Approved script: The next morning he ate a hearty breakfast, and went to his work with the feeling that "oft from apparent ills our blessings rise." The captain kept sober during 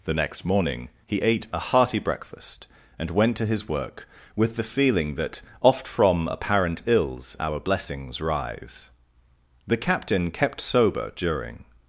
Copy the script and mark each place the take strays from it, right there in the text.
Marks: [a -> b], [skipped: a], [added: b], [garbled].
The next morning he ate a hearty breakfast, and went to his work with the feeling that "oft from apparent ills our blessings rise." The captain kept sober during